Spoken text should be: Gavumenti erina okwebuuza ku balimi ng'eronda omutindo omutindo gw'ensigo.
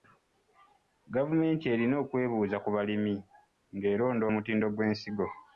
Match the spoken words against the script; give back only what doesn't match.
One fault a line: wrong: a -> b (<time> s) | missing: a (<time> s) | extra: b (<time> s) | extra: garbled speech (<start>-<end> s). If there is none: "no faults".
missing: omutindo (4.7 s)